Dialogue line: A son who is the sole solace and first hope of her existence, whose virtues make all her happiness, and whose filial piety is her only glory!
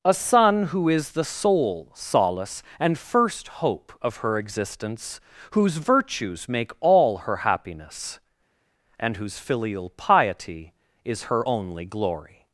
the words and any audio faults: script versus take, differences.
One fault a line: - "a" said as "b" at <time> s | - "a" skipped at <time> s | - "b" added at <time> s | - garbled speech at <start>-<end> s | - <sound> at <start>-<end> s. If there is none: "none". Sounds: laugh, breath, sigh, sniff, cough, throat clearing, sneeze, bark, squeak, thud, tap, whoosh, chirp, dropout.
none